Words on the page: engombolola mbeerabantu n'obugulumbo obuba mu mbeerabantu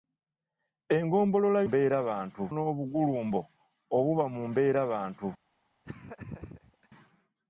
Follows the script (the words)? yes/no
yes